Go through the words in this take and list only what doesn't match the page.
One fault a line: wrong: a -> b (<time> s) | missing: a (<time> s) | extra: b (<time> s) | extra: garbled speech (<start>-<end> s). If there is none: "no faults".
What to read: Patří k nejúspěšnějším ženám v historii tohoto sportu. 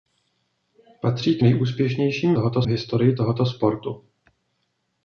wrong: ženám -> tohoto (2.3 s)